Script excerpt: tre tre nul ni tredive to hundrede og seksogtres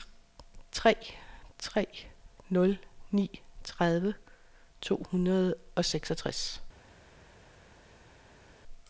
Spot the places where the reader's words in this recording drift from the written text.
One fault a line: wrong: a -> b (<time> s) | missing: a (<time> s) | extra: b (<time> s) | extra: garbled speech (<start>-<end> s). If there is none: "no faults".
no faults